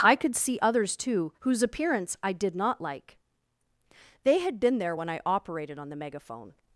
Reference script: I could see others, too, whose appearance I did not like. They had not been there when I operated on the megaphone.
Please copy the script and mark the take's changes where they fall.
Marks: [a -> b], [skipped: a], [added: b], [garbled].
I could see others, too, whose appearance I did not like. They had [skipped: not] been there when I operated on the megaphone.